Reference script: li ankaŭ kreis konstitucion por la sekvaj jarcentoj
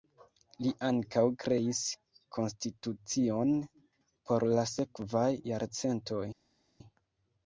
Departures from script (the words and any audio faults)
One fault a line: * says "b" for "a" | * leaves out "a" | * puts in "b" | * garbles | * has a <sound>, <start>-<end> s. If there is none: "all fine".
all fine